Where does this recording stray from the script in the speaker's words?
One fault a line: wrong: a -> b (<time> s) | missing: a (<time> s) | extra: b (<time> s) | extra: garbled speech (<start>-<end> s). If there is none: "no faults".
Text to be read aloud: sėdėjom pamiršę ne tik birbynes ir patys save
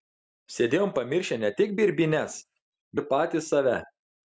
no faults